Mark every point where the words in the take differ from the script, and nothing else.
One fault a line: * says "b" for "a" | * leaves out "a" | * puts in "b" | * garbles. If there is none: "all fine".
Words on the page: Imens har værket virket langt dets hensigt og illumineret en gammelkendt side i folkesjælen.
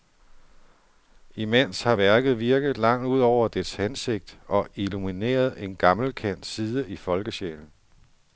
* puts in "ud over"